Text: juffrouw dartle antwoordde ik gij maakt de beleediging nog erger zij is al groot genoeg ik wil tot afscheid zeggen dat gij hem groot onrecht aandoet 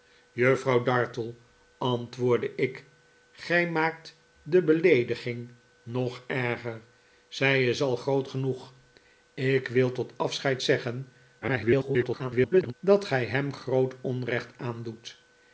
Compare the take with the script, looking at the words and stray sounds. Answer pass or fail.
fail